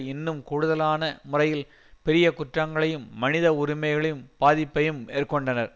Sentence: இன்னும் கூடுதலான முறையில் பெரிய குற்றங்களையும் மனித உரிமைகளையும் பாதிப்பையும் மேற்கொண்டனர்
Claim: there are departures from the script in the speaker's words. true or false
false